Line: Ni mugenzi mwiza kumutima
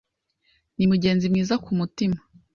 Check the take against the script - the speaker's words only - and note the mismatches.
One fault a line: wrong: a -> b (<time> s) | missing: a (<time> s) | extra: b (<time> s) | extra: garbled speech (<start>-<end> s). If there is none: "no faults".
no faults